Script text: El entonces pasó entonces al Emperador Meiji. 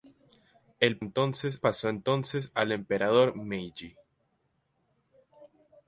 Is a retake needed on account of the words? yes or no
no